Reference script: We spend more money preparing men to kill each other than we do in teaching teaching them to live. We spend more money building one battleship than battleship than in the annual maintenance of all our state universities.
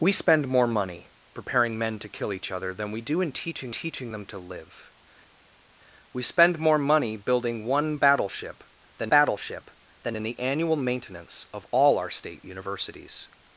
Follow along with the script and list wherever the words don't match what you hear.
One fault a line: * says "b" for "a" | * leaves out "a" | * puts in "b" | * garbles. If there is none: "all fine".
all fine